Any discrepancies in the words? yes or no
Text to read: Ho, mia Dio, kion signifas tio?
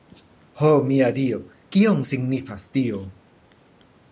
no